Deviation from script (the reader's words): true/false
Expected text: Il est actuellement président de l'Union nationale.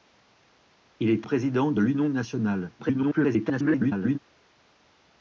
true